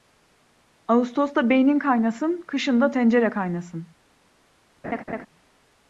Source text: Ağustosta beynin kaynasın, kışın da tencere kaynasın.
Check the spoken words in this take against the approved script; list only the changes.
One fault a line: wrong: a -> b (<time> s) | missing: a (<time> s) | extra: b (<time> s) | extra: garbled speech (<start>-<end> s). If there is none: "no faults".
no faults